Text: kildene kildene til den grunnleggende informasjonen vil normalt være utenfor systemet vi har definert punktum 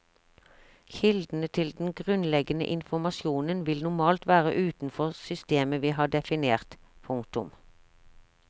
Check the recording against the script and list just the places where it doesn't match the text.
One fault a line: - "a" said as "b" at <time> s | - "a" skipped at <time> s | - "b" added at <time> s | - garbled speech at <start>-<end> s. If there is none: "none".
- "kildene" skipped at 1.5 s